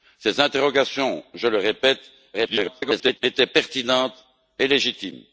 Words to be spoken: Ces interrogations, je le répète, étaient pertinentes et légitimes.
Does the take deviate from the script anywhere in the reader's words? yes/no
yes